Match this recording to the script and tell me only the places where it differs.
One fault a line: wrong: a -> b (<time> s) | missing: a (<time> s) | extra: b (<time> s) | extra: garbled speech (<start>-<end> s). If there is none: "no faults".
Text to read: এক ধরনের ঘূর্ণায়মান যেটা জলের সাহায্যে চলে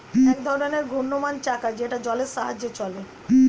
extra: চাকা (1.4 s)